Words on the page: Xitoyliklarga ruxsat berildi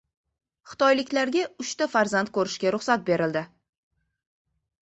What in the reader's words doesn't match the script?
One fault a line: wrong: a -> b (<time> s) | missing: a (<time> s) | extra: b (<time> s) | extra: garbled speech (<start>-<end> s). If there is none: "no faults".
extra: uchta farzand ko‘rishga (1.6 s)